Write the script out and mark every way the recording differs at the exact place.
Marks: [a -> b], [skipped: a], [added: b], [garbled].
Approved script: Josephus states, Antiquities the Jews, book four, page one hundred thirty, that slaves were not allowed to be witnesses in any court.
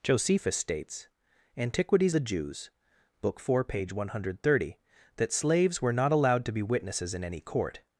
Josephus states, Antiquities the Jews, book four, page one hundred thirty, that slaves were not allowed to be witnesses in any court.